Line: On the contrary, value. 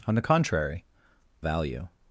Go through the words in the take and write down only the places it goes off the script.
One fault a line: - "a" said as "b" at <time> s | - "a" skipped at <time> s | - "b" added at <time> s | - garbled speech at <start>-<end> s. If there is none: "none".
none